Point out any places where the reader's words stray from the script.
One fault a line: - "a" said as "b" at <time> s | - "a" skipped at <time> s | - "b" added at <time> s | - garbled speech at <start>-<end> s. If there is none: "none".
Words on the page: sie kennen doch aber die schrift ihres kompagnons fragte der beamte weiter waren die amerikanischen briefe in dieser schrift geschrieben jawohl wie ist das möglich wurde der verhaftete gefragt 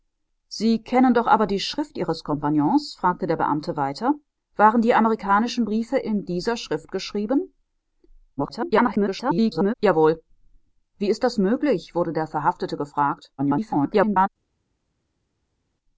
- garbled speech at 8.4-9.7 s
- garbled speech at 13.4-14.3 s